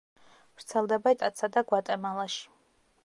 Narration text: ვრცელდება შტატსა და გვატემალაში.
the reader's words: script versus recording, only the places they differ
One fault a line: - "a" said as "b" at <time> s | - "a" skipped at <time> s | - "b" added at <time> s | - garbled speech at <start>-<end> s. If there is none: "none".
none